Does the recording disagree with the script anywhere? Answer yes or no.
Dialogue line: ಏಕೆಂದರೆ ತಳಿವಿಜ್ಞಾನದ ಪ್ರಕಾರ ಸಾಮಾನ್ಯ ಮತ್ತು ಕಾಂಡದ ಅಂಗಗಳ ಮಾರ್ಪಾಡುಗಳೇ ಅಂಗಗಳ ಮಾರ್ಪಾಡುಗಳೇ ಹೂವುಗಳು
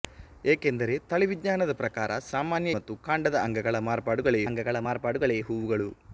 no